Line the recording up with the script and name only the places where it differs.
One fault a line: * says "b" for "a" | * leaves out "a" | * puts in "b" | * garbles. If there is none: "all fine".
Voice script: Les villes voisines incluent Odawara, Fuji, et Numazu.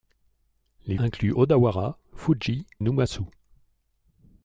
* leaves out "villes voisines"
* leaves out "et"